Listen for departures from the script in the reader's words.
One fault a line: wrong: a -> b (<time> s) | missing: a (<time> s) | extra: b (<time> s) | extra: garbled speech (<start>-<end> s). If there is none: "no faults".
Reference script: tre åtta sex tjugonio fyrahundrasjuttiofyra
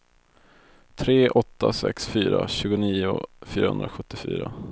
extra: fyra (2.0 s)